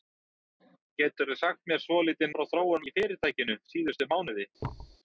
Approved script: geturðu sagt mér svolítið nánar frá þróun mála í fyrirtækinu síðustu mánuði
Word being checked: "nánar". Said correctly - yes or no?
no